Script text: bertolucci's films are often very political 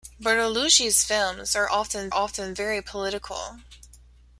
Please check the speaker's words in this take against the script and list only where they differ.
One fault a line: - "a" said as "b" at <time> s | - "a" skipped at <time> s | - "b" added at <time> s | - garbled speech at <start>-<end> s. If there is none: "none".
- "often" added at 2.1 s